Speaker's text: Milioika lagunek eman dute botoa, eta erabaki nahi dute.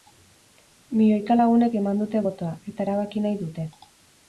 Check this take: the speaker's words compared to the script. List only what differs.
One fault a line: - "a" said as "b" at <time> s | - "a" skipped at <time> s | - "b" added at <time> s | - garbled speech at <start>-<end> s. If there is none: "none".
none